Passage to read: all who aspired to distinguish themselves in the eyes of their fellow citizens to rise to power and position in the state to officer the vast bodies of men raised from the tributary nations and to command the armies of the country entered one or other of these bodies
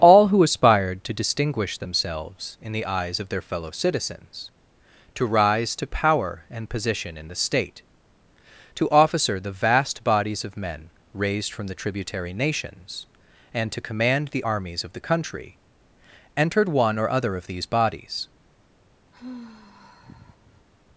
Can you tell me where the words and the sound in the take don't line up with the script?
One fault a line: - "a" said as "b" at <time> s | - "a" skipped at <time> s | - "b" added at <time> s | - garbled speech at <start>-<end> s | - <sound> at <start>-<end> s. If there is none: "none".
- sigh at 19.1-20.7 s